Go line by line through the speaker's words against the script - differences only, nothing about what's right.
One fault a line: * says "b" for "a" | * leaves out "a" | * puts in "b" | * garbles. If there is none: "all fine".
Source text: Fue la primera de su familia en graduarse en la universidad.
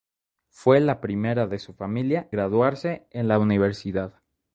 * leaves out "en"